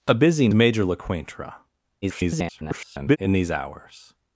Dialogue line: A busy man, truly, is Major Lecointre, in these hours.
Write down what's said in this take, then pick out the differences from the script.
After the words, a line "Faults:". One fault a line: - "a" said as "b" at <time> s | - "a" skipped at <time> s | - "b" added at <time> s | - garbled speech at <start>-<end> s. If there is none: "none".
A busy Major Lecointre, [garbled] in these hours.
Faults:
- "man truly is" skipped at 0.5 s
- garbled speech at 2.0-3.2 s